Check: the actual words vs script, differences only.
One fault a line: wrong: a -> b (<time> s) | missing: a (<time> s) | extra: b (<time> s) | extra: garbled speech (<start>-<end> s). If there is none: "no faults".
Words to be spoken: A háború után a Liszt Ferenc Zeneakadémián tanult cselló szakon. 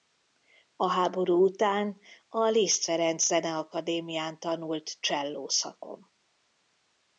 no faults